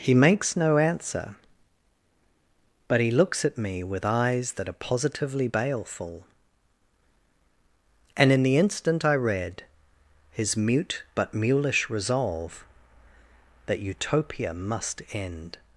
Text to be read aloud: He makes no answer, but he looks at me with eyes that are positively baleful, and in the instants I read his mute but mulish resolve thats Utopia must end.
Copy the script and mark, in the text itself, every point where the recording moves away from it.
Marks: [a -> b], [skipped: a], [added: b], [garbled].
He makes no answer, but he looks at me with eyes that are positively baleful, and in the [instants -> instant] I read his mute but mulish resolve [thats -> that] Utopia must end.